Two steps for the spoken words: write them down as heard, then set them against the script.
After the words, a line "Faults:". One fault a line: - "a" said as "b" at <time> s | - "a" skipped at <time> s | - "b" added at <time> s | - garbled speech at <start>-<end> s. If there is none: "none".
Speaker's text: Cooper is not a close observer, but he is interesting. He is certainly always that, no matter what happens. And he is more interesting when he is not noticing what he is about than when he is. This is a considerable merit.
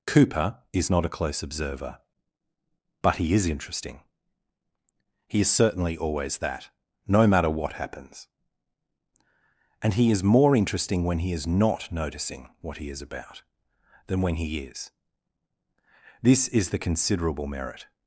Cooper is not a close observer, but he is interesting. He is certainly always that, no matter what happens. And he is more interesting when he is not noticing what he is about than when he is. This is the considerable merit.
Faults:
- "a" said as "the" at 16.7 s